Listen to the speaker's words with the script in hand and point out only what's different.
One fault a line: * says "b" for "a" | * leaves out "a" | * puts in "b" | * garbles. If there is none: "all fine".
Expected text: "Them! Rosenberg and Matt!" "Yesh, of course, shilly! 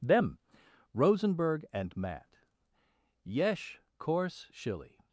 * leaves out "of"